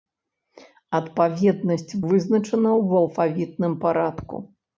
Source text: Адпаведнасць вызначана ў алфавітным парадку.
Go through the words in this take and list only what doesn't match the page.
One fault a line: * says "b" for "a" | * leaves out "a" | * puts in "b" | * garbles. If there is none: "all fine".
all fine